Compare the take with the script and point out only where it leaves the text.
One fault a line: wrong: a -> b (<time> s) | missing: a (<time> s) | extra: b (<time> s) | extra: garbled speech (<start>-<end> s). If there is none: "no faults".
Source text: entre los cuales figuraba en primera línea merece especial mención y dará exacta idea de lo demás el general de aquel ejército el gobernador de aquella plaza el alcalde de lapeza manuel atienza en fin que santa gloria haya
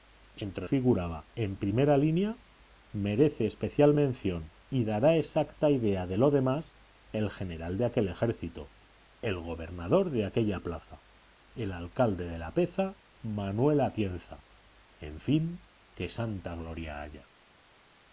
missing: los cuales (0.7 s)